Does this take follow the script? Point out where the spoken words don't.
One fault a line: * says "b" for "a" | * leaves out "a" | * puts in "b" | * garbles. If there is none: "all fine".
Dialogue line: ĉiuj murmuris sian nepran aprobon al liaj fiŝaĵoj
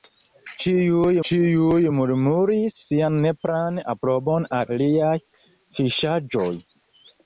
* puts in "ĉiuj"